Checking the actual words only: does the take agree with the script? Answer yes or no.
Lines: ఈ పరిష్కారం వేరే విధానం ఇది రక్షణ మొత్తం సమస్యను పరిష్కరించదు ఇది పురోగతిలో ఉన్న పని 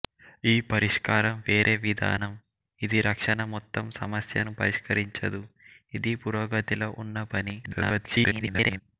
no